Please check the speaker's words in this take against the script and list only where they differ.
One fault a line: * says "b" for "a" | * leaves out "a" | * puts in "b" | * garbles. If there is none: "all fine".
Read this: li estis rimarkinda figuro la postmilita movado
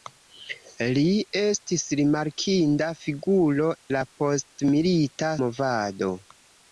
all fine